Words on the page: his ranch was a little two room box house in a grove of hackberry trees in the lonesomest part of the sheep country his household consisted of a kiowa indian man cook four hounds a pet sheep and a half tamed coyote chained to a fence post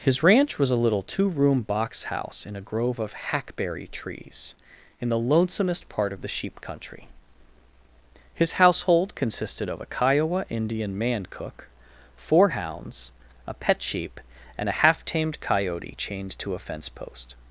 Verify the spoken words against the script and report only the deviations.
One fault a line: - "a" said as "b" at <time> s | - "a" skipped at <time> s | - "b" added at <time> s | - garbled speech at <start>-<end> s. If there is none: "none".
none